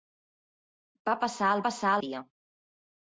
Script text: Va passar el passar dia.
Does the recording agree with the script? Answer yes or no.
yes